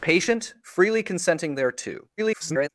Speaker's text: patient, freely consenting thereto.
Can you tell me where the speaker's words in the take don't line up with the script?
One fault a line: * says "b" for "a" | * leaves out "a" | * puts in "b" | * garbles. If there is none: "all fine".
* garbles